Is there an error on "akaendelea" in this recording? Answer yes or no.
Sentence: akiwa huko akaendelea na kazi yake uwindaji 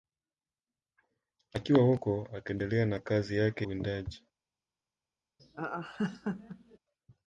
no